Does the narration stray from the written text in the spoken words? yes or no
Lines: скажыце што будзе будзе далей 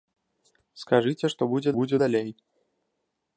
no